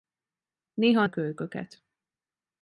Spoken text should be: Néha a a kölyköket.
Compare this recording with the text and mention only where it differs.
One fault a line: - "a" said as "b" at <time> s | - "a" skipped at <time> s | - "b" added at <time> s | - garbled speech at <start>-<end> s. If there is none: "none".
none